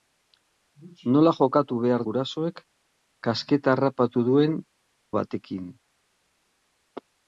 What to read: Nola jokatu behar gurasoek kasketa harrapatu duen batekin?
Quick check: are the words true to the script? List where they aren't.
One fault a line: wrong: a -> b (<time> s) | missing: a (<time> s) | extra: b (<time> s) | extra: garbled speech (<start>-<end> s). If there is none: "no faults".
no faults